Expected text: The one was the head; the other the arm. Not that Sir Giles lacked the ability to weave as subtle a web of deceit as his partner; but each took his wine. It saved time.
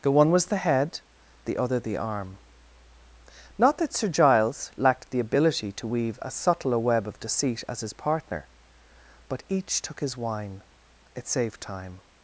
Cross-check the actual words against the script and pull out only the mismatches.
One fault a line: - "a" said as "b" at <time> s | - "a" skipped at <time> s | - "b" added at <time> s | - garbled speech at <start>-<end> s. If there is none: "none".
none